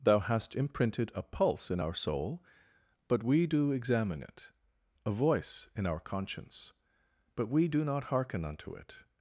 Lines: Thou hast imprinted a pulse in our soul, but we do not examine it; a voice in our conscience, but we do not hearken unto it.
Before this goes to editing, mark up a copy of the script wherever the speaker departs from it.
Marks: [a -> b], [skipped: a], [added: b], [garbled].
Thou hast imprinted a pulse in our soul, but we do [skipped: not] examine it; a voice in our conscience, but we do not hearken unto it.